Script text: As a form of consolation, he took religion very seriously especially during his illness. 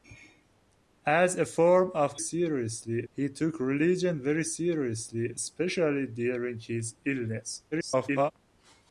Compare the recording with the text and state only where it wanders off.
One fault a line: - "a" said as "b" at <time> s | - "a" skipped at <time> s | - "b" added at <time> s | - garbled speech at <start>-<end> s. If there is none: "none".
- "consolation" said as "seriously" at 2.2 s
- garbled speech at 7.7-8.3 s